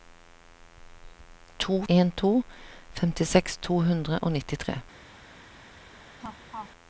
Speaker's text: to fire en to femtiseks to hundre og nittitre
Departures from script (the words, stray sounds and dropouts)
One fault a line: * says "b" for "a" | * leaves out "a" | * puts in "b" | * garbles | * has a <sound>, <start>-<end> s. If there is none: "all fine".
* leaves out "fire"
* has a laugh, 6.2-6.7 s